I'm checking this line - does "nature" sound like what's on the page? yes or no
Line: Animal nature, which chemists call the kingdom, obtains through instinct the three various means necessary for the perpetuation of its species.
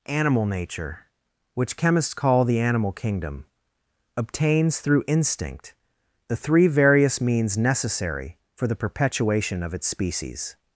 yes